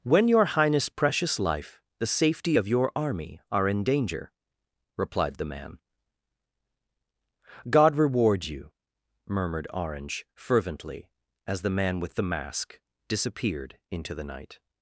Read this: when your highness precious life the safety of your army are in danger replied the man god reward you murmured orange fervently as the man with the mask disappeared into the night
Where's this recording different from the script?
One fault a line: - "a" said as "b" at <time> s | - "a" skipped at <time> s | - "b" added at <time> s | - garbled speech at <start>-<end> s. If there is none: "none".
none